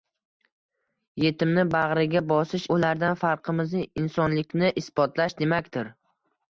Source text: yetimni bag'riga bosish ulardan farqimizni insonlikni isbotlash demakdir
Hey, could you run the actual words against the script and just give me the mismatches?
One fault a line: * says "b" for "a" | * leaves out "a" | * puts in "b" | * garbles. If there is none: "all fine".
all fine